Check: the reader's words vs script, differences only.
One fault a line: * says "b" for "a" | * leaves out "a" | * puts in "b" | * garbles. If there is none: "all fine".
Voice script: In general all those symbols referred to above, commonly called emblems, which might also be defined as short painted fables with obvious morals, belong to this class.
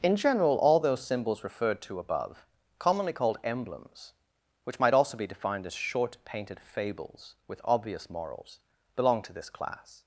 all fine